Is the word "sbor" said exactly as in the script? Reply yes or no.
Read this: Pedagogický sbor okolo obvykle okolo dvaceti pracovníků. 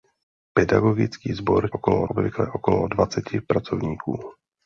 yes